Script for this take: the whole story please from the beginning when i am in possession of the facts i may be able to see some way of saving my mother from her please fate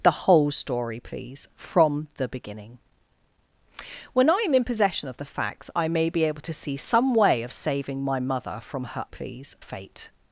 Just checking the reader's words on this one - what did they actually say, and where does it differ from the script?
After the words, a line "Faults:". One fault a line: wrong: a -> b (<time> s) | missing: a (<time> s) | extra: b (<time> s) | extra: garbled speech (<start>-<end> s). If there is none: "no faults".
the whole story please from the beginning when i am in possession of the facts i may be able to see some way of saving my mother from her please fate
Faults:
no faults